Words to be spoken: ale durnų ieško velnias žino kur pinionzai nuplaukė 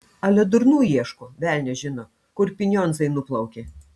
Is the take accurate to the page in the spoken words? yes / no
yes